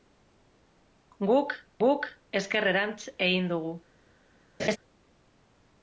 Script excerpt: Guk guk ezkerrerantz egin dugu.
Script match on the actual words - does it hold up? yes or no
yes